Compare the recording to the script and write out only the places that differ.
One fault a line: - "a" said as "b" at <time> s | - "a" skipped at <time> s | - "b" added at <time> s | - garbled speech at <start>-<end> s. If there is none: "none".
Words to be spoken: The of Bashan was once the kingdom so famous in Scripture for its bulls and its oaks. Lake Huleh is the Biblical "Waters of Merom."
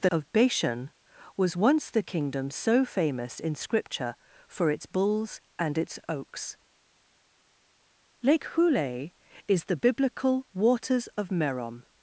none